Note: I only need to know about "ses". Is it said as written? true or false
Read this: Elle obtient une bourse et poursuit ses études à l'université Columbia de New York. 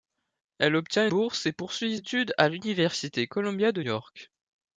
false